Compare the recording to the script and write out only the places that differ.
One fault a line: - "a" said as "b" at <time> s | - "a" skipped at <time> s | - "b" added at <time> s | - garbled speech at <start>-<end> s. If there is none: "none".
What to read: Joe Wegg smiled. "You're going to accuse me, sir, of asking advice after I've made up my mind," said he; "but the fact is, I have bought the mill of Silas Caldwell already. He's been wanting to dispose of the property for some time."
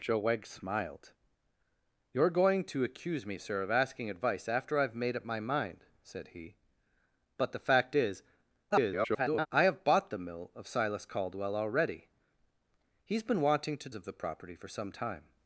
- garbled speech at 8.7-9.5 s
- "dispose" skipped at 13.9 s